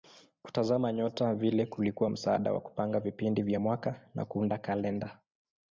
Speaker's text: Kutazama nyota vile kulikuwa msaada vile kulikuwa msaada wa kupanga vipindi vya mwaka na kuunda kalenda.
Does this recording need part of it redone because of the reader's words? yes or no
yes